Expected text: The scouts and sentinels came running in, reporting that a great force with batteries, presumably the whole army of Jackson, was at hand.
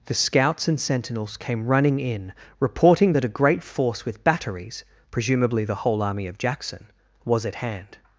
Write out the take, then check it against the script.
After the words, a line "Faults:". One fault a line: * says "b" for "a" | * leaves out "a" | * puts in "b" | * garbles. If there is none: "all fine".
The scouts and sentinels came running in, reporting that a great force with batteries, presumably the whole army of Jackson, was at hand.
Faults:
all fine